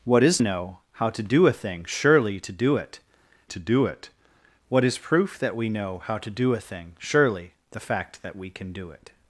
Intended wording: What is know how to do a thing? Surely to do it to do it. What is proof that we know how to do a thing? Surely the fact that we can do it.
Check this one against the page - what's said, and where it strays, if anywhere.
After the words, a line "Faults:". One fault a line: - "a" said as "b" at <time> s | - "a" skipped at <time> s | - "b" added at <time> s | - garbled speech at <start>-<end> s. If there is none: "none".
What is know how to do a thing? Surely to do it to do it. What is proof that we know how to do a thing? Surely the fact that we can do it.
Faults:
none